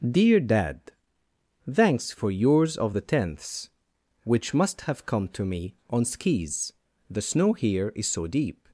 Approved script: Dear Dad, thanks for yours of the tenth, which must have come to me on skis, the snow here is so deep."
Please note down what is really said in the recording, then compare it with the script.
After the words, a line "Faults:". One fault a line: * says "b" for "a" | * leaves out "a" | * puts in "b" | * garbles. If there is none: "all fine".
Dear Dad, thanks for yours of the tenths, which must have come to me on skis, the snow here is so deep."
Faults:
* says "tenths" for "tenth"